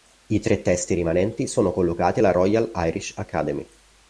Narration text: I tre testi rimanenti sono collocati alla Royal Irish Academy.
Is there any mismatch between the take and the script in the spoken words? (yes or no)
no